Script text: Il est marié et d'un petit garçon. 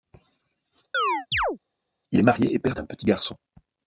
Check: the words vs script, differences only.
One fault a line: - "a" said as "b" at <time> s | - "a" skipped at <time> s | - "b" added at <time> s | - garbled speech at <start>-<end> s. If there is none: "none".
- "père" added at 2.6 s